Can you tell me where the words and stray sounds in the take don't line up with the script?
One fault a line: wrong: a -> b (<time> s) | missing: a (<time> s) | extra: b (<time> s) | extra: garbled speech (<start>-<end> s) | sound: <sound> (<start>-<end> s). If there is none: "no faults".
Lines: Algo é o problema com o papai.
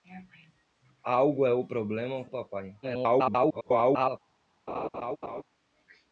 missing: com (2.2 s)
extra: garbled speech (2.8-4.2 s)
sound: laugh (4.7-5.4 s)